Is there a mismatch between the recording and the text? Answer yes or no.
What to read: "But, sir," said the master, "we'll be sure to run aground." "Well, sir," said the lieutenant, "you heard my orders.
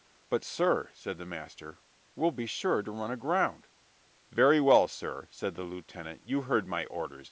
yes